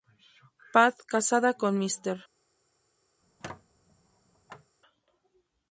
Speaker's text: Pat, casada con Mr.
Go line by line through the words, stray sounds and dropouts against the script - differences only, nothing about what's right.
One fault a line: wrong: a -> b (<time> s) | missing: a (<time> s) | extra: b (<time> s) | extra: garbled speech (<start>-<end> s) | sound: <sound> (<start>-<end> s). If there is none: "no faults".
sound: squeak (3.2-4.7 s)